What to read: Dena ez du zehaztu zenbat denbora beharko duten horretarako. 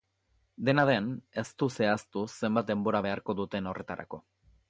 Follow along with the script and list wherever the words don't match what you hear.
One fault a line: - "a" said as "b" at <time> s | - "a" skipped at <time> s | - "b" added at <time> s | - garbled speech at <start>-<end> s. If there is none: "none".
- "den" added at 0.9 s